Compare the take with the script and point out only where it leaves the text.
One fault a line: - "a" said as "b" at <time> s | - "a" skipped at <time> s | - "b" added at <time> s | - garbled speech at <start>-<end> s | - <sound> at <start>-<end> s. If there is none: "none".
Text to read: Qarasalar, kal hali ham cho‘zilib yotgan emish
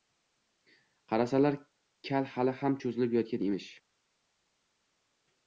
none